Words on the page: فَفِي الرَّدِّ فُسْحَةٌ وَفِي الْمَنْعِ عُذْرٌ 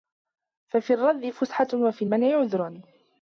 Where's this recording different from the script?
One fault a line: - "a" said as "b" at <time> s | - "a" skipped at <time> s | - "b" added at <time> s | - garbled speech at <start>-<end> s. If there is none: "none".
none